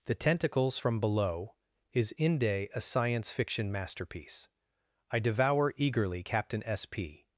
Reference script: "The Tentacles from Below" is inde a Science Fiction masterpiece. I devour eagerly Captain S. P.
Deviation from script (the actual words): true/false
false